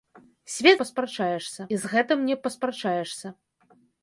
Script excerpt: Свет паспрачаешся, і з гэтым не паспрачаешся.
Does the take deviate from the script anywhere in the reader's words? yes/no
no